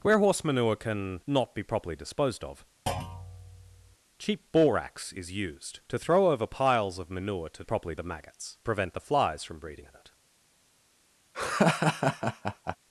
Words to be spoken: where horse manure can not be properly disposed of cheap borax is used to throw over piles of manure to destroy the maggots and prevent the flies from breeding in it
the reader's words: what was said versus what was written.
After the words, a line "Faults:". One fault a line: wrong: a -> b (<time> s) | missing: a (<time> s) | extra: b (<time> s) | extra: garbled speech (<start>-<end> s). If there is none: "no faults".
where horse manure can not be properly disposed of cheap borax is used to throw over piles of manure to properly the maggots prevent the flies from breeding in it
Faults:
wrong: destroy -> properly (7.6 s)
missing: and (8.6 s)